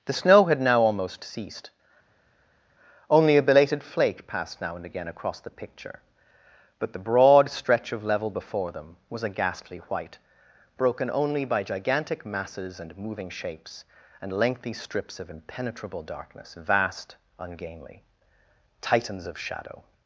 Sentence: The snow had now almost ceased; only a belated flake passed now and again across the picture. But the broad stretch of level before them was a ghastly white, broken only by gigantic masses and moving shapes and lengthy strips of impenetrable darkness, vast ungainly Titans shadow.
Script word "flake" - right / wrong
right